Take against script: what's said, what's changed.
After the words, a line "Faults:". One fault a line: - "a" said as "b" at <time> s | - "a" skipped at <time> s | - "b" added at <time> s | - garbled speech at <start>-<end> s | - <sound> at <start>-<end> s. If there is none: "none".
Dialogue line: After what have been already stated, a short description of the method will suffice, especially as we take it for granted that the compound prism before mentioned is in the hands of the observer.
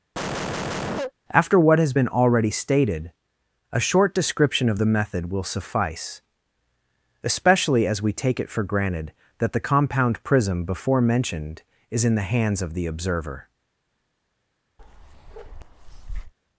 After what has been already stated, a short description of the method will suffice, especially as we take it for granted that the compound prism before mentioned is in the hands of the observer.
Faults:
- cough at 0.1-1.1 s
- "have" said as "has" at 1.8 s
- bark at 14.8-16.3 s